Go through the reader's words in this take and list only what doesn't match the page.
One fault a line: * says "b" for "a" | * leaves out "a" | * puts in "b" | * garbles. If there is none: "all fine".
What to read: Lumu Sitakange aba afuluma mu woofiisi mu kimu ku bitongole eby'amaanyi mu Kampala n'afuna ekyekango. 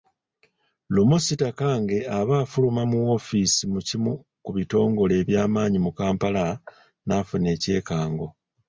all fine